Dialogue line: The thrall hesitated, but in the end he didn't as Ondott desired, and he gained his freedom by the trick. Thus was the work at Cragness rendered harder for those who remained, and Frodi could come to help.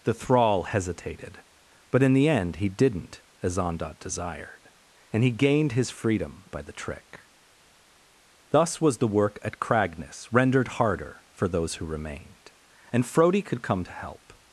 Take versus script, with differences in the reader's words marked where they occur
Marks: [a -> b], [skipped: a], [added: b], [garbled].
The thrall hesitated, but in the end he didn't as Ondott desired, and he gained his freedom by the trick. Thus was the work at Cragness rendered harder for those who remained, and Frodi could come to help.